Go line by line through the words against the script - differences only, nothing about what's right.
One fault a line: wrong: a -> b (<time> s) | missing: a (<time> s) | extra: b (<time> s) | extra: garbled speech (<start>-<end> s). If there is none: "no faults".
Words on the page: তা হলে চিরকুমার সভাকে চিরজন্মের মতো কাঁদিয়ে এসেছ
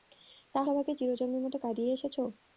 missing: হলে চিরকুমার (0.7 s)